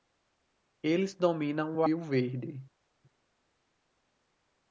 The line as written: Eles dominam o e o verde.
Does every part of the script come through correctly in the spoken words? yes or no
yes